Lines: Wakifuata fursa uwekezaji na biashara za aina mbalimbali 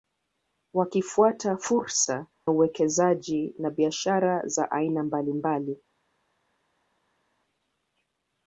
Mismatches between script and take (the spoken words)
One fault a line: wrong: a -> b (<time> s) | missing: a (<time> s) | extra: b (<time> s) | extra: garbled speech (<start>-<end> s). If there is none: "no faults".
no faults